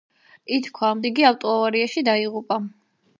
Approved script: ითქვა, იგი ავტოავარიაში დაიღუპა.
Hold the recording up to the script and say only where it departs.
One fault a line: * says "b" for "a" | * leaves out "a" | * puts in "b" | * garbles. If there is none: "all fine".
all fine